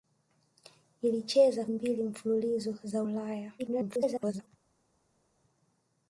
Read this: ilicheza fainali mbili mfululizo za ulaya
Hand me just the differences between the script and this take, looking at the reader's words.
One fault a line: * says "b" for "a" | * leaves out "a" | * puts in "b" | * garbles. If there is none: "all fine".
* leaves out "fainali"
* garbles